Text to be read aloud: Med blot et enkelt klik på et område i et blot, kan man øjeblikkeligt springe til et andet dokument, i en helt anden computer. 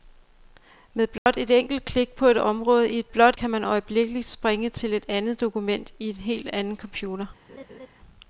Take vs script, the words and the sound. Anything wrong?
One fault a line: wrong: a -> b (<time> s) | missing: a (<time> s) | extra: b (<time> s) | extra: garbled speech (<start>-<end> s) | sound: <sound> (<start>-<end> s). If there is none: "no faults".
sound: dropout (1.2-1.3 s)
sound: laugh (7.5-7.9 s)